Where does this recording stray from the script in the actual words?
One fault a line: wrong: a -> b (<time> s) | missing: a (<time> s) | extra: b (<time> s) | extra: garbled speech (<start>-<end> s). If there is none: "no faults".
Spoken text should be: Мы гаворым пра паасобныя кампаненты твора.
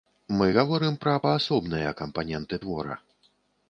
no faults